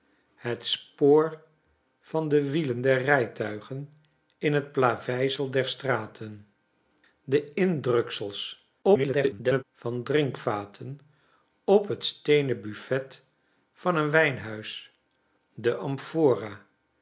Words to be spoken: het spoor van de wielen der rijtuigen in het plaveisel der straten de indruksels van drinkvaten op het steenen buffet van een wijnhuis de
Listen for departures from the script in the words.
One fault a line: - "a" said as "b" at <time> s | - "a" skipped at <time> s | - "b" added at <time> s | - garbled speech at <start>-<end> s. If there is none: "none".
- garbled speech at 8.8-9.6 s